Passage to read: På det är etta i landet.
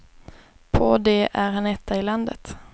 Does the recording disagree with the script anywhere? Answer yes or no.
yes